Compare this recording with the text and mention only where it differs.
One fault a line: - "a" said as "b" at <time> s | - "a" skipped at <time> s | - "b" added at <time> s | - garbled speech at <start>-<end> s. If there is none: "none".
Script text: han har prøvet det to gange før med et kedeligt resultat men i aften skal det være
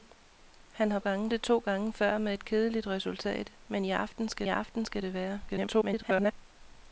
- "prøvet" said as "gange" at 1.0 s
- "aften skal" added at 4.5 s
- garbled speech at 5.5-6.3 s